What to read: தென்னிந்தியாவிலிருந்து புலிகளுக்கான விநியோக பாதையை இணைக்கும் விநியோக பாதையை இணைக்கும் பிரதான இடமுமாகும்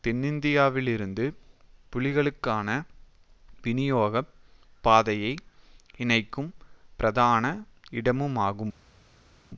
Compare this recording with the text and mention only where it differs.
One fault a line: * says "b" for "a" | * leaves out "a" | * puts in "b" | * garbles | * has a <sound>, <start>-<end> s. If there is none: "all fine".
* leaves out "விநியோக பாதையை இணைக்கும்"